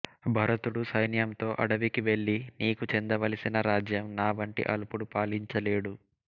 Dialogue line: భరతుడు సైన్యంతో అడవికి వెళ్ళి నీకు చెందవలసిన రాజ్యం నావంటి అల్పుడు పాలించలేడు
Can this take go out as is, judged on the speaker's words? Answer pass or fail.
pass